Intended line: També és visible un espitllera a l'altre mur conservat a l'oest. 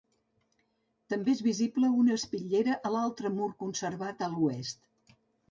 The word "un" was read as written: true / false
false